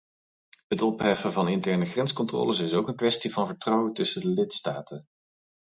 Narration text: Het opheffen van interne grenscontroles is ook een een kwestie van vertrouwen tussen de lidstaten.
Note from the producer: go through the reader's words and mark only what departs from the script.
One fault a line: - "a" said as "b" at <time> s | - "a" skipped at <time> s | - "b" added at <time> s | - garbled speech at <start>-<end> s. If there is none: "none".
- "een" skipped at 3.0 s